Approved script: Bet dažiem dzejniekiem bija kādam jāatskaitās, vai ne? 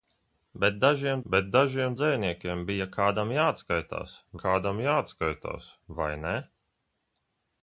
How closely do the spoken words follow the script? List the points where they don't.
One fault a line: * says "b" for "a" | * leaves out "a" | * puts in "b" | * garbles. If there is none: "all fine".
* puts in "bet dažiem"
* puts in "kādam jāatskaitās"